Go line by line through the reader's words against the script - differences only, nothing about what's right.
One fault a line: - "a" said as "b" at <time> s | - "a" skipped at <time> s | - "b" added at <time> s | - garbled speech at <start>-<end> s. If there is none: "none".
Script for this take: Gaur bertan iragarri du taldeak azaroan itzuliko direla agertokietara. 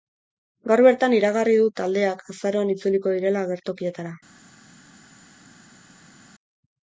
none